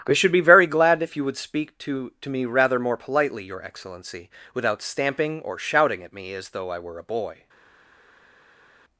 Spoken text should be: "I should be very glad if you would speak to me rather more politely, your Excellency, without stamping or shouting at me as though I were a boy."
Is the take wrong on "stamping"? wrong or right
right